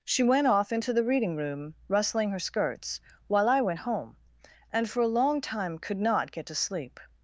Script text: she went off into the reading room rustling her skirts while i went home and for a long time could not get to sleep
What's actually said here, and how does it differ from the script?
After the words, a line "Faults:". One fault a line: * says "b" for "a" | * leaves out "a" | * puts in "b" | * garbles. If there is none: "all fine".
she went off into the reading room rustling her skirts while i went home and for a long time could not get to sleep
Faults:
all fine